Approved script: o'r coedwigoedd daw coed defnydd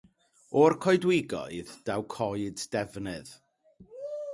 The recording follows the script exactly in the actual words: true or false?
true